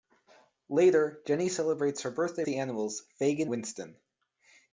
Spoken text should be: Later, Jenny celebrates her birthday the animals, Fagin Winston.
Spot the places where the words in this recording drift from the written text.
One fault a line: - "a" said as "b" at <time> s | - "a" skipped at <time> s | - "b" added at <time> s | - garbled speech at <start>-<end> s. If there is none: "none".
none